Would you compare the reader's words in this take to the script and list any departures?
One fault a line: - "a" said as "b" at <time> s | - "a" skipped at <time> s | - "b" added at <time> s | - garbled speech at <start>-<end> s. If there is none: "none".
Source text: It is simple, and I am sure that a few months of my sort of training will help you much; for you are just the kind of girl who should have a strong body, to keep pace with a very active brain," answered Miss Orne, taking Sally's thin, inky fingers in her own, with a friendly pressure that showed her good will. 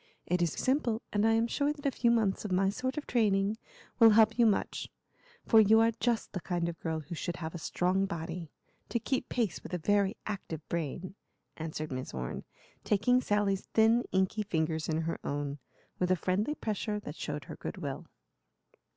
none